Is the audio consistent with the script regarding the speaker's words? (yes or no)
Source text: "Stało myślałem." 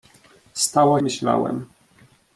yes